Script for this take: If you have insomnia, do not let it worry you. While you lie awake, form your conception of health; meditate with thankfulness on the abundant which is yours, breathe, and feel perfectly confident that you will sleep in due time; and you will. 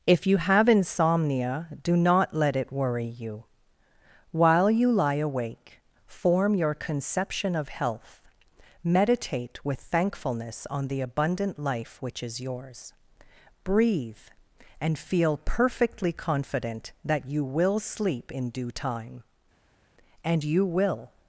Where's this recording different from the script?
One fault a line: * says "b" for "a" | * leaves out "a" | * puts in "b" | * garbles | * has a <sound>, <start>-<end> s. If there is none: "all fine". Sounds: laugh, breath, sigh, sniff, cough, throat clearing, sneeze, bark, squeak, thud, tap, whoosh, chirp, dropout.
* puts in "life"